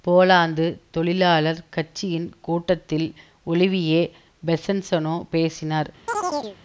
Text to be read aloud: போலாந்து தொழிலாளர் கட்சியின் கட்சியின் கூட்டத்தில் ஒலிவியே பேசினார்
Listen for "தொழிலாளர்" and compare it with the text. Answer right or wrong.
right